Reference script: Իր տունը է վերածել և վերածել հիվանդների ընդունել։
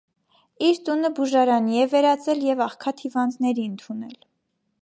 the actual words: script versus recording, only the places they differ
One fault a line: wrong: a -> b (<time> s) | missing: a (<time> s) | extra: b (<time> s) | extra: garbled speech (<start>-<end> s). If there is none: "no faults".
extra: բուժարանի (1.2 s)
wrong: վերածել -> աղքատ (2.7 s)